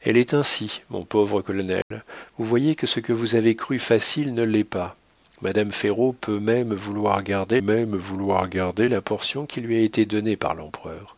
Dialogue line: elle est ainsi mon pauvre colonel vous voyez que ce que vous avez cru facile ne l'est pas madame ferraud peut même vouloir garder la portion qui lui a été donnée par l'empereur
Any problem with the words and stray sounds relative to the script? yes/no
yes